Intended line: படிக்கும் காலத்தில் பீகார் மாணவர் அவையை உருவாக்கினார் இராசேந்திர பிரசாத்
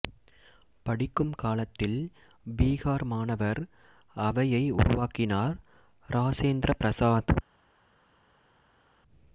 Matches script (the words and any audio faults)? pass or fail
pass